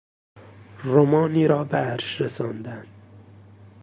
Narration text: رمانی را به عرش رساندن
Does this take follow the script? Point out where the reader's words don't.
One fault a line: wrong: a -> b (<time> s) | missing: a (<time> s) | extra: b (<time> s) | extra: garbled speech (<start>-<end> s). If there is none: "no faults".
no faults